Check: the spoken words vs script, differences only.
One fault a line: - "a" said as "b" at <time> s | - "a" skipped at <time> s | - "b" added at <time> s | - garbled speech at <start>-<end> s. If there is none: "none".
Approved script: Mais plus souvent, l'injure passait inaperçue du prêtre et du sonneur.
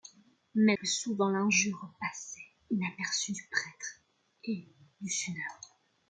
none